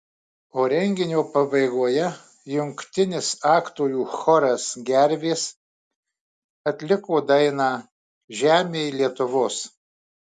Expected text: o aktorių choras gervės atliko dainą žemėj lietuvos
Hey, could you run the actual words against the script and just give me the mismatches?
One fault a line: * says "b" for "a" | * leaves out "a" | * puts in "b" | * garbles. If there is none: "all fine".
* puts in "renginio pabaigoje jungtinis"